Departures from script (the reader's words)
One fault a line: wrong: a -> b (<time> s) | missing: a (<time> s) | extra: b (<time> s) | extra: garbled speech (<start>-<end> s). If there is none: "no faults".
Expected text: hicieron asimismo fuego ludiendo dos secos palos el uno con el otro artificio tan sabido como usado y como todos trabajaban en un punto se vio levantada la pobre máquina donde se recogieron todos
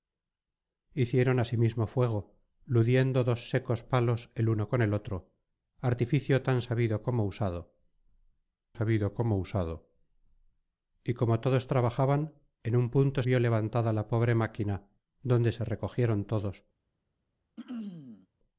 extra: sabido como usado (8.7 s)
missing: se (13.2 s)